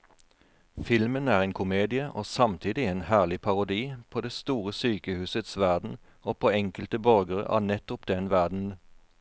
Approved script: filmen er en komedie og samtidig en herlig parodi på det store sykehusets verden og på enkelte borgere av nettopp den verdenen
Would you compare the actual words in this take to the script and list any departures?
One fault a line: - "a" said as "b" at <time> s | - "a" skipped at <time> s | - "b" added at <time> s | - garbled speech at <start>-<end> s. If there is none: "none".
none